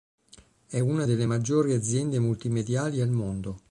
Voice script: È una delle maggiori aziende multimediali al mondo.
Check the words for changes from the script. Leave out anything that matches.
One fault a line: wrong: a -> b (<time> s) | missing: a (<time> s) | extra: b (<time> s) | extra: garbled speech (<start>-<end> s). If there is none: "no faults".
no faults